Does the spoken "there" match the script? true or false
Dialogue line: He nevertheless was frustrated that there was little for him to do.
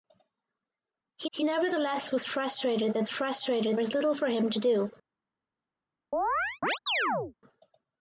false